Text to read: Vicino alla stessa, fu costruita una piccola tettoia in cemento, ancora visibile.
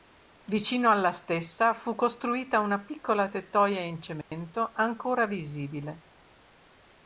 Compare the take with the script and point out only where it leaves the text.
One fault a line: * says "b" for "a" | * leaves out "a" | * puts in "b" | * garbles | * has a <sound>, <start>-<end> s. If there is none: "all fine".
* has a dropout, 4.2-4.3 s